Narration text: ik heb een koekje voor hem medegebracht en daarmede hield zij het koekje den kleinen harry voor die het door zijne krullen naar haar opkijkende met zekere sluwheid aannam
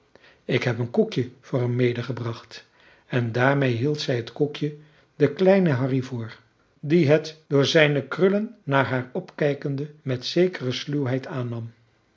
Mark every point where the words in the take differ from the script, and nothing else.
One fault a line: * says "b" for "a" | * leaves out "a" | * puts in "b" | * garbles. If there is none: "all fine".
all fine